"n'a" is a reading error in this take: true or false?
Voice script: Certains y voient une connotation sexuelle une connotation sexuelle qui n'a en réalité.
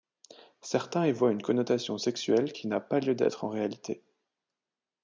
true